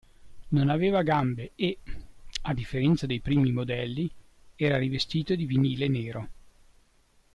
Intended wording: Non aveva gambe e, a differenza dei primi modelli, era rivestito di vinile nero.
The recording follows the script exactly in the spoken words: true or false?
true